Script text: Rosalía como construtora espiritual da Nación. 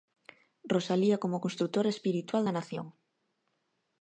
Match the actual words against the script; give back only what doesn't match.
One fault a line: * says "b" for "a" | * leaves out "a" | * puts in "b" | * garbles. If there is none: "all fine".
all fine